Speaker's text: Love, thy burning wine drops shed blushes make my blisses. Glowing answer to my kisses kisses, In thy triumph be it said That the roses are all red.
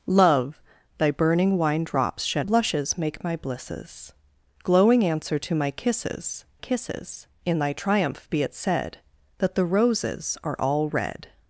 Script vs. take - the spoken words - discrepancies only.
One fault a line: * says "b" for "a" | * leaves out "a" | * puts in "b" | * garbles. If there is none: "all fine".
all fine